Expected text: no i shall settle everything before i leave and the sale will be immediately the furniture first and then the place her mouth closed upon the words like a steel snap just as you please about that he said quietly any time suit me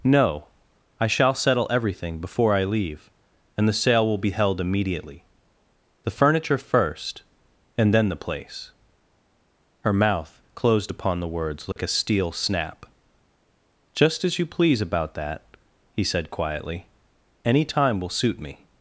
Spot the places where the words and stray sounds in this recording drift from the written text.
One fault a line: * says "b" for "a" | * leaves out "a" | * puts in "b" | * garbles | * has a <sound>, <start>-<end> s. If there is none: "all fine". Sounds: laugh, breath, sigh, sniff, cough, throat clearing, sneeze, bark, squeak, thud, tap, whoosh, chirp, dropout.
* puts in "held"
* has a dropout, 11.7-11.8 s
* puts in "will"